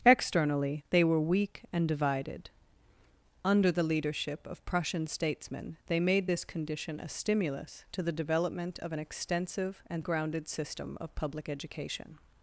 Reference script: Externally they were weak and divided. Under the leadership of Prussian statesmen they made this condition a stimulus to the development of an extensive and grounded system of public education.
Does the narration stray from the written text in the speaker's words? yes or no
no